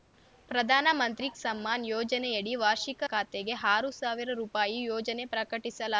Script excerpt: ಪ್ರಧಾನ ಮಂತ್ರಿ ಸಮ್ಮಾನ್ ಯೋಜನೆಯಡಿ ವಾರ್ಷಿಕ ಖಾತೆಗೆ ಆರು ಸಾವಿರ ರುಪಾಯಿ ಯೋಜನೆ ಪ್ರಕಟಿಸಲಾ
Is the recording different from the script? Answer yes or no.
no